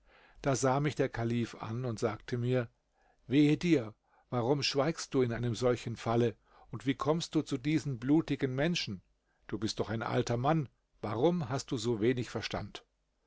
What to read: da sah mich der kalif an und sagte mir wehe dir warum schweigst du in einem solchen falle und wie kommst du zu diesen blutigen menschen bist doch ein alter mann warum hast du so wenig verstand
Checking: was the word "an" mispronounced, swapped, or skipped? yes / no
no